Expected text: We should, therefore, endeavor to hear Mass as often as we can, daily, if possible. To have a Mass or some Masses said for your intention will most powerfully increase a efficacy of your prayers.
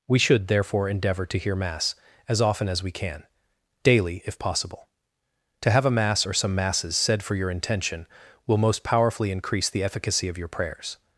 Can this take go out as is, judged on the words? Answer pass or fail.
fail